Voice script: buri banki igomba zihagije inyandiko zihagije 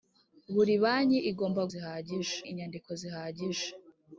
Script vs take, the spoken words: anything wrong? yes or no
no